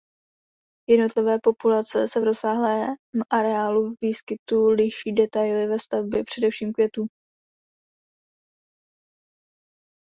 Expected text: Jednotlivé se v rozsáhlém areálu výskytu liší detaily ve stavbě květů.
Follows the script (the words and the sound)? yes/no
no